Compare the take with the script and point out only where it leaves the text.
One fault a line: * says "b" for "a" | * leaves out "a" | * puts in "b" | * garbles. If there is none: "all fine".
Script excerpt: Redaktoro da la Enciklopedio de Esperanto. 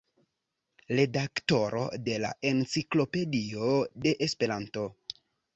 * says "de" for "da"